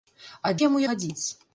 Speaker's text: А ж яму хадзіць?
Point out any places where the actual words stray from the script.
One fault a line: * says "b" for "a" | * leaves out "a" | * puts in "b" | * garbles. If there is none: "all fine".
all fine